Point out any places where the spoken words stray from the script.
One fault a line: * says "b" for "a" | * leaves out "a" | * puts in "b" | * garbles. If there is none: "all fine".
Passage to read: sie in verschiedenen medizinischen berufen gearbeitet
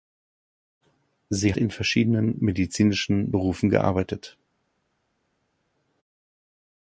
all fine